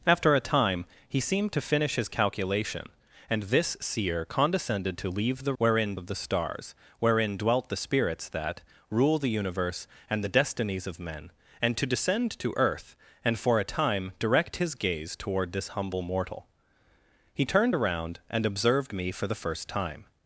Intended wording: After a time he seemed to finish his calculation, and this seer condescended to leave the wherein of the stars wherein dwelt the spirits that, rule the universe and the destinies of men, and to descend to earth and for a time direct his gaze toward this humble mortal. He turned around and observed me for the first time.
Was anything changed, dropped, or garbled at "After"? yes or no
no